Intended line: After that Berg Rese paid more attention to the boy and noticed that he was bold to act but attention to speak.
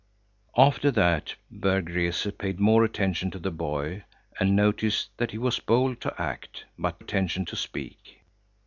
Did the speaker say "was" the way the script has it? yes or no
yes